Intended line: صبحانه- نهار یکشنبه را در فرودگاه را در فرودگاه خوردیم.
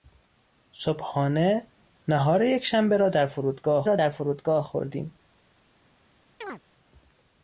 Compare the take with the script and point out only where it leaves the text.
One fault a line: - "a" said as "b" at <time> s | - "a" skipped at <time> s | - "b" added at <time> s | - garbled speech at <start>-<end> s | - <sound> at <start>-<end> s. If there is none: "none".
- chirp at 6.4-6.6 s